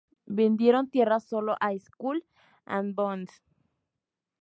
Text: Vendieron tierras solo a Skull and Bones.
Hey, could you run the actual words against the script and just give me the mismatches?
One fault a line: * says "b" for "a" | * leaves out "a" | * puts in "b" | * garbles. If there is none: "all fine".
all fine